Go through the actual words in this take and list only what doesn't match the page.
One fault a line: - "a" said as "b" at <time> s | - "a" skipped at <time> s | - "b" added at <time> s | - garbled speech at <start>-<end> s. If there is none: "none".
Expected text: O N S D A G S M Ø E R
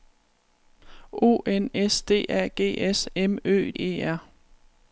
none